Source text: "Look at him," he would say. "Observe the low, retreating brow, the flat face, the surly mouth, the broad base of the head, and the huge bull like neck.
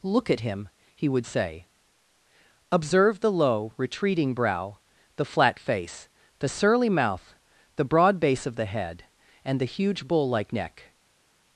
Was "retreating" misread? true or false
false